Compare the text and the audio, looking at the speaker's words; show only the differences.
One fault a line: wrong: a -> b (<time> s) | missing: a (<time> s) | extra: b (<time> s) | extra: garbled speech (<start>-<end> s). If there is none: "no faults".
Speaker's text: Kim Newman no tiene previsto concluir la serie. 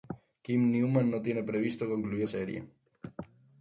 missing: la (2.3 s)